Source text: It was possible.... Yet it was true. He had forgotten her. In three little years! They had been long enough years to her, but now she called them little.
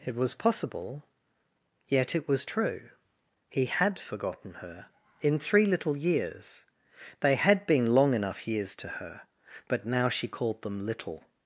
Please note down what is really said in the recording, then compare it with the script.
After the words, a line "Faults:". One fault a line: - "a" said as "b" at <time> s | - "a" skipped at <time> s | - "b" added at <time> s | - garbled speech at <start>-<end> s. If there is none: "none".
It was possible.... Yet it was true. He had forgotten her. In three little years! They had been long enough years to her, but now she called them little.
Faults:
none